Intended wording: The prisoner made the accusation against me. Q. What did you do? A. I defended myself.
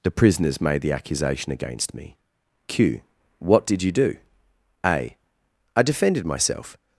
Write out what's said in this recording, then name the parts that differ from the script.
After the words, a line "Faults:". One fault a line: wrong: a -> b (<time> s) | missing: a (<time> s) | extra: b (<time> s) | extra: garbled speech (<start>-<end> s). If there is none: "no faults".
The prisoners made the accusation against me. Q. What did you do? A. I defended myself.
Faults:
wrong: prisoner -> prisoners (0.1 s)